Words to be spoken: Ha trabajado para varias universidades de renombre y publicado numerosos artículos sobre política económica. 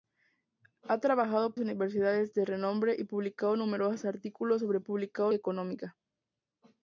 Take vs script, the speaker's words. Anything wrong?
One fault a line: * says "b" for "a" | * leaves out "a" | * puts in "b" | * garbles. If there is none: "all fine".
* leaves out "para varias"
* says "publicado" for "política"